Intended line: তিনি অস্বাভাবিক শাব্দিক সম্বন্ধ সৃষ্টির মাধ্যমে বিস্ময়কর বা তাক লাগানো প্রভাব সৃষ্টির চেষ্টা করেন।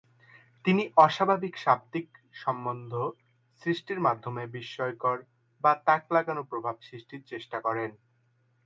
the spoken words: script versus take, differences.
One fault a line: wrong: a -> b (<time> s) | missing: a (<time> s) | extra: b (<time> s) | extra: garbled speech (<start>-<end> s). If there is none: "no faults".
no faults